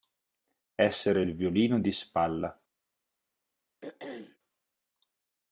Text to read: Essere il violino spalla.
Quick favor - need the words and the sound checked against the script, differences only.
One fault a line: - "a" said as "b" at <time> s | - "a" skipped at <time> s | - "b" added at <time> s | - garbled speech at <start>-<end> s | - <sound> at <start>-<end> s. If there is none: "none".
- "di" added at 1.8 s
- throat clearing at 3.8-4.4 s